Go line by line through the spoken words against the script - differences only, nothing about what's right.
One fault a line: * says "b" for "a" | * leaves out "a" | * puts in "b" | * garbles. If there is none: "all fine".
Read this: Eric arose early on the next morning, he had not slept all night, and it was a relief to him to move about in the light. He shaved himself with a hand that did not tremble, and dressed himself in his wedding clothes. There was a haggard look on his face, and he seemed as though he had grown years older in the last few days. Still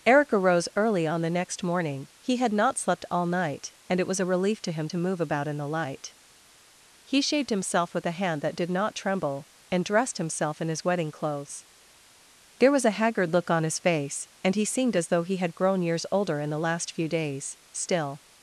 all fine